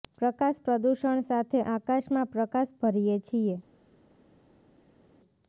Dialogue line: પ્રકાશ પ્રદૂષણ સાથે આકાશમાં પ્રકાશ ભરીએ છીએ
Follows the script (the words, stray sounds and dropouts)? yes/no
yes